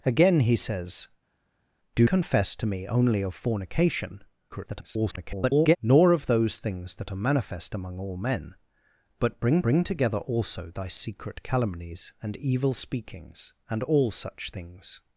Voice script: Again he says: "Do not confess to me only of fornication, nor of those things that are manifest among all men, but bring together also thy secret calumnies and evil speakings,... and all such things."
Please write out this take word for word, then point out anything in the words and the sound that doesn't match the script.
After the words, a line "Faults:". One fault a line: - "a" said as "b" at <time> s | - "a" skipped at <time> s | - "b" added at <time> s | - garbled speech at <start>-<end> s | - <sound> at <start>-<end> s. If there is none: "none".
Again he says: "Do confess to me only of fornication, [garbled] nor of those things that are manifest among all men, but bring bring together also thy secret calumnies and evil speakings,... and all such things."
Faults:
- "not" skipped at 2.1 s
- garbled speech at 4.5-5.8 s
- "bring" added at 9.6 s